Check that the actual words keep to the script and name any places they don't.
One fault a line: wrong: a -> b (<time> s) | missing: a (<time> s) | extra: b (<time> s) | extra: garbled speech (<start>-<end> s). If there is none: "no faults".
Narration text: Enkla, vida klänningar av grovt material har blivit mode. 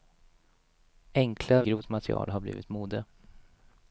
missing: vida klänningar av (1.6 s)